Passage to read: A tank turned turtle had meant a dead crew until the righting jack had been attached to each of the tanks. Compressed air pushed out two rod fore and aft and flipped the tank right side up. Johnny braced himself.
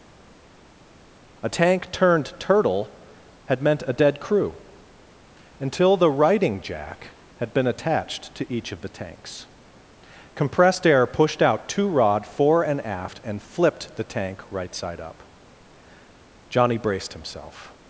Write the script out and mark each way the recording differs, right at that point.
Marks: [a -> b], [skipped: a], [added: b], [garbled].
A tank turned turtle had meant a dead crew until the righting jack had been attached to each of the tanks. Compressed air pushed out two rod fore and aft and flipped the tank right side up. Johnny braced himself.